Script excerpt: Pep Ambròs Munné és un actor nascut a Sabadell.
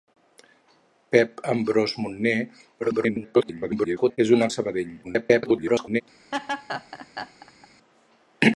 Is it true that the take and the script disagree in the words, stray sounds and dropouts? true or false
true